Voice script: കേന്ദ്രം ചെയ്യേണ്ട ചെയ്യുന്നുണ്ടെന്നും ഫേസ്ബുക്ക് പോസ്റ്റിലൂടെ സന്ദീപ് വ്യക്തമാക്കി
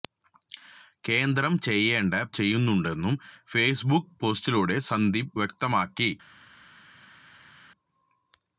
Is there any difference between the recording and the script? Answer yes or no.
no